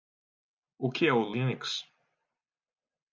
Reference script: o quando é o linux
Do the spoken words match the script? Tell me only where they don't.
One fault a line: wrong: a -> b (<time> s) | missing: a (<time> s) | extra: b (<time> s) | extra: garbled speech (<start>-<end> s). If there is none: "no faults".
wrong: quando -> que (0.9 s)